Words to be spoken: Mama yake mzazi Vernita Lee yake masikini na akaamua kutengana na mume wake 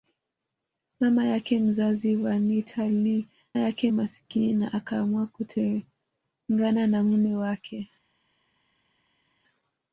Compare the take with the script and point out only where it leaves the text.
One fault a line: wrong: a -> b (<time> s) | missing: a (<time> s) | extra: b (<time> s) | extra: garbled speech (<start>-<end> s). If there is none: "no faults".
no faults